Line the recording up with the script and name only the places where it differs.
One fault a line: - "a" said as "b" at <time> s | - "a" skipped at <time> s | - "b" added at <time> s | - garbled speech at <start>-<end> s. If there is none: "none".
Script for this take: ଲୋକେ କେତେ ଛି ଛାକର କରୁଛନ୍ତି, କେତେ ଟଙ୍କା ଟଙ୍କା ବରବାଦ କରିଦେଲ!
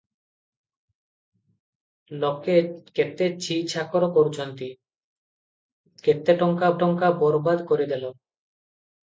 none